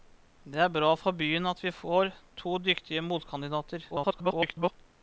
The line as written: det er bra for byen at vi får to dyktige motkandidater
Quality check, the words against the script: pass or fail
fail